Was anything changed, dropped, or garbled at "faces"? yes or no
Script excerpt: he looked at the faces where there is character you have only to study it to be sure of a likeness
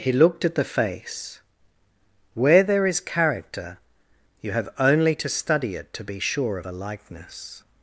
yes